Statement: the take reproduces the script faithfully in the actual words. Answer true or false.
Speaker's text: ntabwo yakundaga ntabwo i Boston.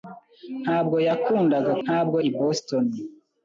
true